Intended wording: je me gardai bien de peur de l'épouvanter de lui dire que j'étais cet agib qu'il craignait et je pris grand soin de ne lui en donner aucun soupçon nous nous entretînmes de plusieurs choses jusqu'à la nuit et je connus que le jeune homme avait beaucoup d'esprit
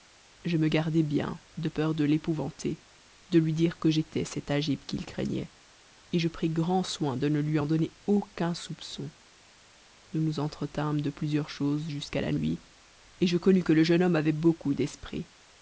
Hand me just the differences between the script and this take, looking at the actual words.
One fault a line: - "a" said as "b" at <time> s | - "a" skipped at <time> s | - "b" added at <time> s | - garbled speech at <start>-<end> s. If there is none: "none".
none